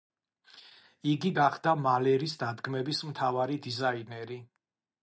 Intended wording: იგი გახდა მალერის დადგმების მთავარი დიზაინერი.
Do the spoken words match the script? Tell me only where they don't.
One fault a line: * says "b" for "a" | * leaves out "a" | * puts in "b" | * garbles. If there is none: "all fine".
all fine